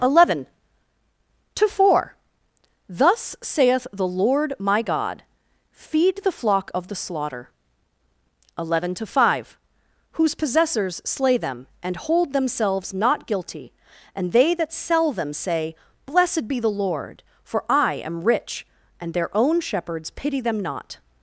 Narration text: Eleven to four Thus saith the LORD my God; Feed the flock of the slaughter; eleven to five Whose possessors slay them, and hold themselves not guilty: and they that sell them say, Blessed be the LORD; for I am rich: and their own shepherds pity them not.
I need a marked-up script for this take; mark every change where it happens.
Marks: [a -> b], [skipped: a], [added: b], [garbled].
Eleven to four Thus saith the LORD my God; Feed the flock of the slaughter; eleven to five Whose possessors slay them, and hold themselves not guilty: and they that sell them say, Blessed be the LORD; for I am rich: and their own shepherds pity them not.